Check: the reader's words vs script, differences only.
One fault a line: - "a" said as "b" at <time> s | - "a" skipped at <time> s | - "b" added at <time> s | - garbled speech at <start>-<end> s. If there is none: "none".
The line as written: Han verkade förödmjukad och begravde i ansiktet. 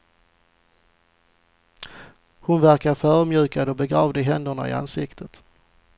- "Han" said as "Hon" at 2.4 s
- "händerna" added at 4.2 s